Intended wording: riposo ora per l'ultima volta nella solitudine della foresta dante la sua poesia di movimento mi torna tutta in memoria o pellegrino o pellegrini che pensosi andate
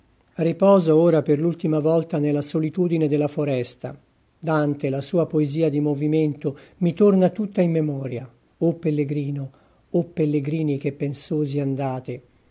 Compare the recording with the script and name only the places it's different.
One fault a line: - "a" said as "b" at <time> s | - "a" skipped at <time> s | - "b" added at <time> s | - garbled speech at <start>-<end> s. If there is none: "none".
none